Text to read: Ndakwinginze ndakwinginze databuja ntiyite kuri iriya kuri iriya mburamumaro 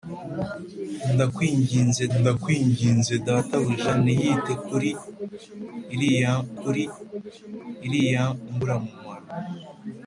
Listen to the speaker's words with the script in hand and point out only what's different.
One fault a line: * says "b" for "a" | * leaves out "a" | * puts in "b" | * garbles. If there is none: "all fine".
all fine